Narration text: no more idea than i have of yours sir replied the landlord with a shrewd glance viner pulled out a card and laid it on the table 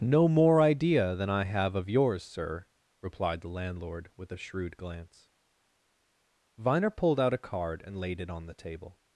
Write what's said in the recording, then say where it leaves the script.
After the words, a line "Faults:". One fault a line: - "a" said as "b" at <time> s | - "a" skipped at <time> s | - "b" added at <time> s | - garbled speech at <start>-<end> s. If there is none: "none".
no more idea than i have of yours sir replied the landlord with a shrewd glance viner pulled out a card and laid it on the table
Faults:
none